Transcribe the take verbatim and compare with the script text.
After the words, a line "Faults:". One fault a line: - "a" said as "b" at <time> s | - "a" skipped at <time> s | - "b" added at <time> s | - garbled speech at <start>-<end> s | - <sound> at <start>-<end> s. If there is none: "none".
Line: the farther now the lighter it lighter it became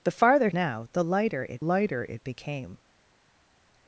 the farther now the lighter it lighter it became
Faults:
none